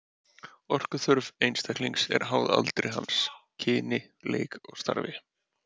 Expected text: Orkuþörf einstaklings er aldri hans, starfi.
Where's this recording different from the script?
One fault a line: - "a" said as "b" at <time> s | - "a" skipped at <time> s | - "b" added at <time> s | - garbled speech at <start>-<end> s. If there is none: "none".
- "háð" added at 2.3 s
- "kyni leik og" added at 3.7 s